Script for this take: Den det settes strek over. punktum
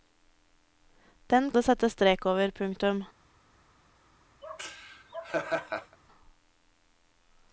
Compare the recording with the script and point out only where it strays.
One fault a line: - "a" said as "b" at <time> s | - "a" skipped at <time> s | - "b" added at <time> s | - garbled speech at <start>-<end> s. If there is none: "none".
none